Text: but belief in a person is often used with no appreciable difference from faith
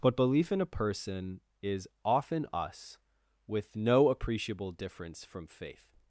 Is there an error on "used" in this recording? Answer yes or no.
yes